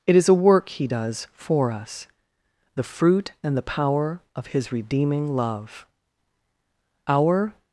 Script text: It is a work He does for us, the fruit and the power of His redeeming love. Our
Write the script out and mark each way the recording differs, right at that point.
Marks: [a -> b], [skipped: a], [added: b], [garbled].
It is a work He does for us, the fruit and the power of His redeeming love. Our